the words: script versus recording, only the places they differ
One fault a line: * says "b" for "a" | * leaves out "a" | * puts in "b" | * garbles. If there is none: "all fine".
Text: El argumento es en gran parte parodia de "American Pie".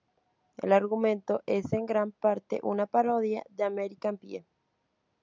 * puts in "una"